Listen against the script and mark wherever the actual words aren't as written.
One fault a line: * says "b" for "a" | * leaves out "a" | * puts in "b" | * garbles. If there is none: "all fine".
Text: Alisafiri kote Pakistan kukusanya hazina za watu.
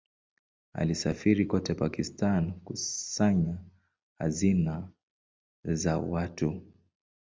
all fine